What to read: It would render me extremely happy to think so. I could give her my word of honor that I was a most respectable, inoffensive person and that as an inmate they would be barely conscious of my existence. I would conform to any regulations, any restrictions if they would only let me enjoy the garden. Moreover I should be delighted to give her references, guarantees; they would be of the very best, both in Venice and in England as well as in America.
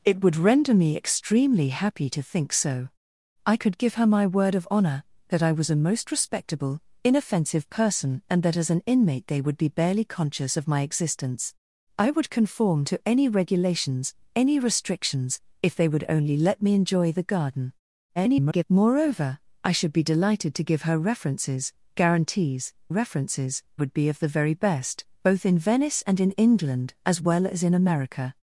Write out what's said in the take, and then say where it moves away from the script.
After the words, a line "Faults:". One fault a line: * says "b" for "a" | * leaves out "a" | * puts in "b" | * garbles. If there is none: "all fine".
It would render me extremely happy to think so. I could give her my word of honor that I was a most respectable, inoffensive person and that as an inmate they would be barely conscious of my existence. I would conform to any regulations, any restrictions if they would only let me enjoy the garden. [garbled] Moreover I should be delighted to give her references, guarantees; references would be of the very best, both in Venice and in England as well as in America.
Faults:
* garbles
* says "references" for "they"